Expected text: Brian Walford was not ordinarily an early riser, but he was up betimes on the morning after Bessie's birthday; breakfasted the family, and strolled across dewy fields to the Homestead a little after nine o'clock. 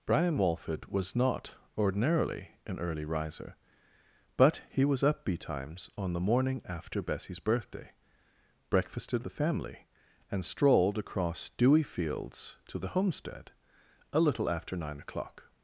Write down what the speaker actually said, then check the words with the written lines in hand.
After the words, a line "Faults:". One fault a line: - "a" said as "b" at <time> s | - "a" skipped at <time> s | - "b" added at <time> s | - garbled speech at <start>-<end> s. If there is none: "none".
Brian Walford was not ordinarily an early riser, but he was up betimes on the morning after Bessie's birthday; breakfasted the family, and strolled across dewy fields to the Homestead a little after nine o'clock.
Faults:
none